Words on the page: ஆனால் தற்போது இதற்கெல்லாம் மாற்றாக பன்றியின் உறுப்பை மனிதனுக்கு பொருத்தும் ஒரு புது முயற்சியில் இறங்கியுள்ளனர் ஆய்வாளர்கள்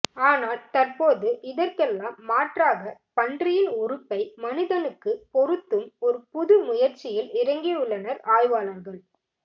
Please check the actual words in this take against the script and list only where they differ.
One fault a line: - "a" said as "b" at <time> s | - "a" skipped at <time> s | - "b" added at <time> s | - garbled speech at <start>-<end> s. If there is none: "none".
none